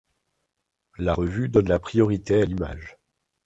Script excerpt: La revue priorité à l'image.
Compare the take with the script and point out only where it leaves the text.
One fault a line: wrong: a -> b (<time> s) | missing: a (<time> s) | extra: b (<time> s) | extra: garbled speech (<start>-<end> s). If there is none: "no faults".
extra: donne la (1.5 s)